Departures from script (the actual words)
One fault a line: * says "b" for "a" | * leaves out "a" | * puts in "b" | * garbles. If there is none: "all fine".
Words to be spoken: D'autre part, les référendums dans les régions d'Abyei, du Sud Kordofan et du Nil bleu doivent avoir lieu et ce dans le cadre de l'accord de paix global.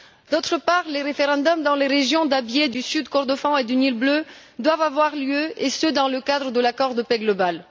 all fine